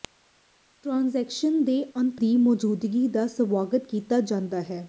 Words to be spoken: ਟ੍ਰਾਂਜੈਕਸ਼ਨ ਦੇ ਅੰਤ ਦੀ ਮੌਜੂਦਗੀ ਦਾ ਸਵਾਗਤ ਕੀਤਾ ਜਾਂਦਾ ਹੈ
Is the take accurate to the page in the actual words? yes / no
yes